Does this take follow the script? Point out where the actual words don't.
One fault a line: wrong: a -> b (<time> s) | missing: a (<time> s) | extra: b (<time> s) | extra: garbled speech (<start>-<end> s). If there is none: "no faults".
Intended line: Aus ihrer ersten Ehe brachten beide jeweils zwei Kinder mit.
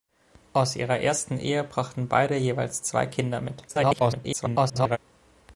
extra: garbled speech (3.7-5.0 s)